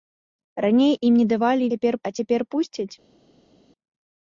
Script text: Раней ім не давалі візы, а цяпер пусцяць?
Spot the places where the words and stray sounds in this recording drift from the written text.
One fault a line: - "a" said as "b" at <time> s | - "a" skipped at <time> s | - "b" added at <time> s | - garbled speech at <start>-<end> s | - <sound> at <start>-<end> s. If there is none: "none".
- "візы" said as "цяпер" at 1.7 s